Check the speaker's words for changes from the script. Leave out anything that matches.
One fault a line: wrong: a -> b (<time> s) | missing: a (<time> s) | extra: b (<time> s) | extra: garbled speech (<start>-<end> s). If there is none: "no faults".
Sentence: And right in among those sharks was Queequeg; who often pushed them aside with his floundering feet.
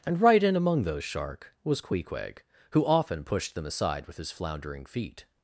wrong: sharks -> shark (1.0 s)